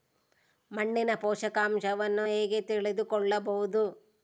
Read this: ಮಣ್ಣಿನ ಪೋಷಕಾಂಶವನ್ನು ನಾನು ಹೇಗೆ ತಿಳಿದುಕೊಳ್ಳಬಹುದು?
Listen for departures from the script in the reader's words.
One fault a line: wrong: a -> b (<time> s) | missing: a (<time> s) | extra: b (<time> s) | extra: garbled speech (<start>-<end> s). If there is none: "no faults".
missing: ನಾನು (2.3 s)